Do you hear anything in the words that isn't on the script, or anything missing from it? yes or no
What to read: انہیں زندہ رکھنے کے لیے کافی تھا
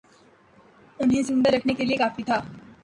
no